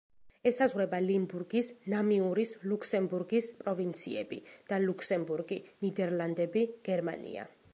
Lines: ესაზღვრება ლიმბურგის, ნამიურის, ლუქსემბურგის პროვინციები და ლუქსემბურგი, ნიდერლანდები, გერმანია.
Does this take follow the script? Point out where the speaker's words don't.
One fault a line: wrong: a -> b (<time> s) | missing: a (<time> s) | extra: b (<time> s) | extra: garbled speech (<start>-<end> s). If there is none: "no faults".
no faults